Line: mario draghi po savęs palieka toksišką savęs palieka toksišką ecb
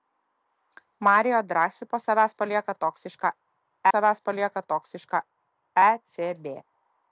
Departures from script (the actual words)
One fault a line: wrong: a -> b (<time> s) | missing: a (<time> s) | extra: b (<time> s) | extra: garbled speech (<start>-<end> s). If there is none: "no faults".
no faults